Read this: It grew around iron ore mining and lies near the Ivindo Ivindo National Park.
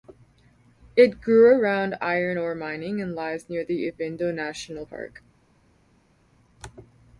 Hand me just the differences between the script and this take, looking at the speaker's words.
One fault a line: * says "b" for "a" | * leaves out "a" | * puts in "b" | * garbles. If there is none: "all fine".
* leaves out "Ivindo"